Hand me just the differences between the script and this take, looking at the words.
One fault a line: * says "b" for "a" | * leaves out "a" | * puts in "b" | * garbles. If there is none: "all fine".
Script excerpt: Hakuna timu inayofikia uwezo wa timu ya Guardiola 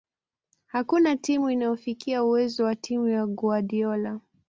all fine